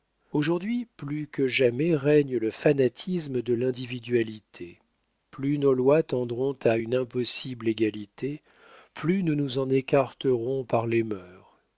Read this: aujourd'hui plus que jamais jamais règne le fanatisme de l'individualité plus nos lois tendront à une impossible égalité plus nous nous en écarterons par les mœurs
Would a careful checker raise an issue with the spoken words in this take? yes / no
yes